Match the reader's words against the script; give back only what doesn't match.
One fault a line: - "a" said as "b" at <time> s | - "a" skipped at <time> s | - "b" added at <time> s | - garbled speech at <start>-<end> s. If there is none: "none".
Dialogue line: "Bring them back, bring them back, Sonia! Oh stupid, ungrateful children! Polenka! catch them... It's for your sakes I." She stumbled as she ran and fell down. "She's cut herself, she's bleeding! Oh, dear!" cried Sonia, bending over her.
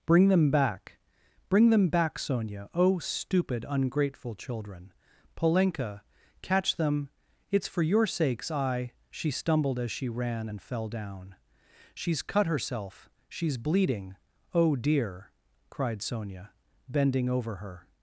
none